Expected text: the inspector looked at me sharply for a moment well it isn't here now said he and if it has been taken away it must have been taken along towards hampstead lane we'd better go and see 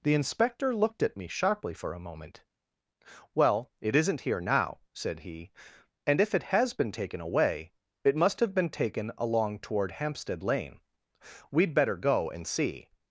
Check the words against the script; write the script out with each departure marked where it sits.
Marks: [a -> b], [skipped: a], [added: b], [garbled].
the inspector looked at me sharply for a moment well it isn't here now said he and if it has been taken away it must have been taken along [towards -> toward] hampstead lane we'd better go and see